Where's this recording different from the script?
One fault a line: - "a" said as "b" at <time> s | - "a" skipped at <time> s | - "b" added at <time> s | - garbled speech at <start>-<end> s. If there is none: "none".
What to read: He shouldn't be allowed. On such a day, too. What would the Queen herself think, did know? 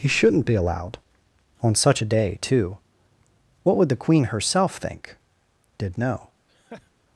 none